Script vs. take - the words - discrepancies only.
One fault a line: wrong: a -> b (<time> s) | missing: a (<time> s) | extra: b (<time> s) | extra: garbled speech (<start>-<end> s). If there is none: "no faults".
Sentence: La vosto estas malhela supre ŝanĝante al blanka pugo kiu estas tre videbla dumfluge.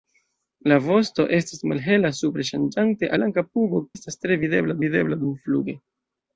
missing: al (3.1 s)
missing: kiu (3.8 s)
extra: videbla (4.8 s)